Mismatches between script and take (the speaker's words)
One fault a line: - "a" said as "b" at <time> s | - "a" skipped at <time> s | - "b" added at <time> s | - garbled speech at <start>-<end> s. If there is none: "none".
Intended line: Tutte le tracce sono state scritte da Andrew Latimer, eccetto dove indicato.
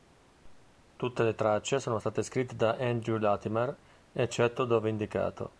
none